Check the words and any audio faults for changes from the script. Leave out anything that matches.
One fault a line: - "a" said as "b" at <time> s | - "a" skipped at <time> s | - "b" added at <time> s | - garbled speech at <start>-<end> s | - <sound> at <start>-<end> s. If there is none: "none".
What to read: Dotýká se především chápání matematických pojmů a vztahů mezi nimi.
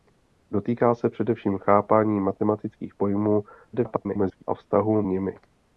- garbled speech at 3.7-4.4 s
- "mezi" skipped at 5.0 s